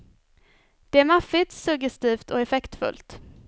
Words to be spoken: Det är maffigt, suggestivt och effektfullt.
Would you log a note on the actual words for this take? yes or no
no